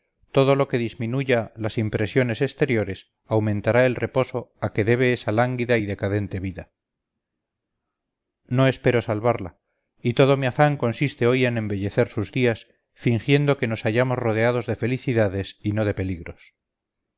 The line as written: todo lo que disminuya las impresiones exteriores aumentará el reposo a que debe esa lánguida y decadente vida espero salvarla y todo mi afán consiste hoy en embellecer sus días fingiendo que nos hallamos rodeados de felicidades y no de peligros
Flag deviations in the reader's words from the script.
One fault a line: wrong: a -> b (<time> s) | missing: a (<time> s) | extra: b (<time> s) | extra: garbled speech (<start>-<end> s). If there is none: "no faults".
extra: no (8.5 s)